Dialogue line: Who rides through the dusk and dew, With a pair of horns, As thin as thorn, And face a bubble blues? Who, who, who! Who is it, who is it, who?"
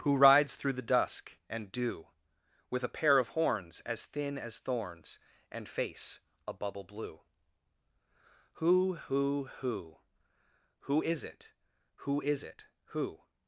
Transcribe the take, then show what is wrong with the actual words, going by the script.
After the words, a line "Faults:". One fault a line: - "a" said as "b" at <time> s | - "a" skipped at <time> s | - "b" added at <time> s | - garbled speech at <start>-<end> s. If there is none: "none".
Who rides through the dusk and dew, With a pair of horns, As thin as thorns, And face a bubble blue? Who, who, who! Who is it, who is it, who?"
Faults:
- "thorn" said as "thorns" at 4.6 s
- "blues" said as "blue" at 6.8 s